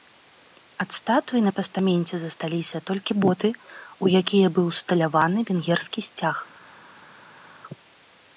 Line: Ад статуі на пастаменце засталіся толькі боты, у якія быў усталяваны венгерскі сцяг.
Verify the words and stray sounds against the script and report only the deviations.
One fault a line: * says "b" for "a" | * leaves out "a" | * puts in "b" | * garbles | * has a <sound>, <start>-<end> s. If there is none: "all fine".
all fine